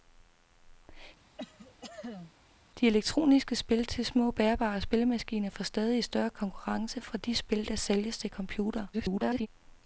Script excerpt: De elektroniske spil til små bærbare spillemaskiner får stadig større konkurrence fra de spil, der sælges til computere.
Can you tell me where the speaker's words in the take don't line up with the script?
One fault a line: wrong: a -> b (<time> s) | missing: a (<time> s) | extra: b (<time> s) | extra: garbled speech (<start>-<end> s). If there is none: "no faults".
extra: garbled speech (8.9-9.5 s)